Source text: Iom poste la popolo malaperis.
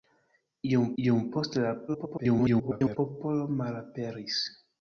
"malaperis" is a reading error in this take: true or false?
false